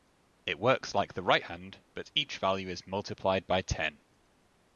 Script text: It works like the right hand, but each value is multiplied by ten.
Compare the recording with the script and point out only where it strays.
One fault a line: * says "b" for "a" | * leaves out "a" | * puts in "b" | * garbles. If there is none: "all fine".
all fine